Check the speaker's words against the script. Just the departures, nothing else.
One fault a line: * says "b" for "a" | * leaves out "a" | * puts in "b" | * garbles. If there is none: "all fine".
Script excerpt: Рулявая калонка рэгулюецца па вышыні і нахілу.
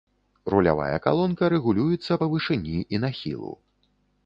all fine